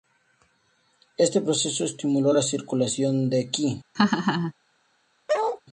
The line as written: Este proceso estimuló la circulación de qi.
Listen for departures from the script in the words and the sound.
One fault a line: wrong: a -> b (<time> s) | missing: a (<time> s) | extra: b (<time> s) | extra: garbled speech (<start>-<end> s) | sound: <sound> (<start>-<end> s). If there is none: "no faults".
sound: laugh (3.9-4.5 s)
sound: bark (5.3-5.6 s)